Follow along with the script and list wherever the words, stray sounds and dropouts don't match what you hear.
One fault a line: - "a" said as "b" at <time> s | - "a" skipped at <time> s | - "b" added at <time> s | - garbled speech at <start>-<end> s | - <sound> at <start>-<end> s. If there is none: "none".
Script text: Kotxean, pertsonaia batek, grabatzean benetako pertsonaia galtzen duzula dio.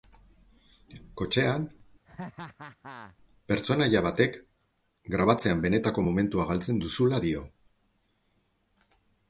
- laugh at 2.0-3.2 s
- "pertsonaia" said as "momentua" at 6.0 s